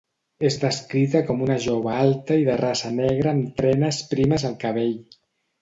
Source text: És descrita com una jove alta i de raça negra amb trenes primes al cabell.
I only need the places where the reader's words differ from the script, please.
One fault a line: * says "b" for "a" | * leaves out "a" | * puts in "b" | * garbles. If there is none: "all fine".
all fine